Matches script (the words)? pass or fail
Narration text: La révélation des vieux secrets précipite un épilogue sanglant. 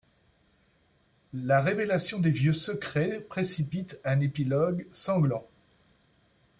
pass